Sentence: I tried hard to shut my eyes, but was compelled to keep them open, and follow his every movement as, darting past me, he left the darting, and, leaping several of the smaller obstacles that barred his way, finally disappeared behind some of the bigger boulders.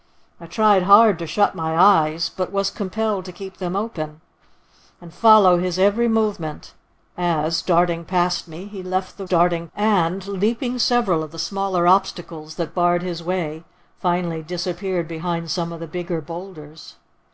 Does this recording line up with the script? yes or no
yes